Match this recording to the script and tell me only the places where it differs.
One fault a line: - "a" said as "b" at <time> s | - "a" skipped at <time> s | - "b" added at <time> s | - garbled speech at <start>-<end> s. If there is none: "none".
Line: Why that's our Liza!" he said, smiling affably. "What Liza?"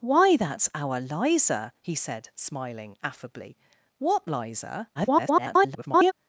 - garbled speech at 4.9-6.1 s